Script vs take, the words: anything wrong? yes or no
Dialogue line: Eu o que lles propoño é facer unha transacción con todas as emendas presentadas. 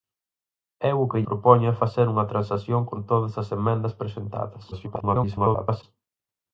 yes